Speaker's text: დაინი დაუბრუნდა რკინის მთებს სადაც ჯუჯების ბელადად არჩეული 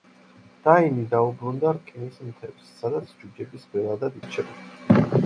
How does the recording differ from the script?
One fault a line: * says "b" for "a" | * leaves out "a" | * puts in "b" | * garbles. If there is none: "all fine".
all fine